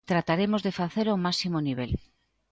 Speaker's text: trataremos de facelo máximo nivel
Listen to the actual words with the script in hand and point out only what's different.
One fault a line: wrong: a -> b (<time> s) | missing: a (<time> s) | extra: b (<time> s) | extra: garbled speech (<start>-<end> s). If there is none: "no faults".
extra: ao (1.1 s)